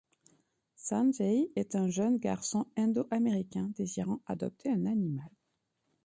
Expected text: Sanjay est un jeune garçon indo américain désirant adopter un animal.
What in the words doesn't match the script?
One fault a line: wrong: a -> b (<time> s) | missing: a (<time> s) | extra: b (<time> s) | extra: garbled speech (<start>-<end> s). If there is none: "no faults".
no faults